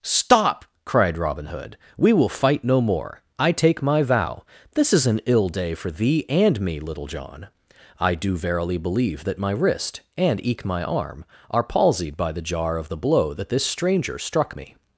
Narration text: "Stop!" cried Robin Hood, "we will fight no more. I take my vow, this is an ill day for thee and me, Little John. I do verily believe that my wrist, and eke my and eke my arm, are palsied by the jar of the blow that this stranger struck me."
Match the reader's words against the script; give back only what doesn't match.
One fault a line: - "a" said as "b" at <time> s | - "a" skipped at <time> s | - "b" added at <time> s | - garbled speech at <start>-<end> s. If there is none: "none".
- "and eke my" skipped at 10.8 s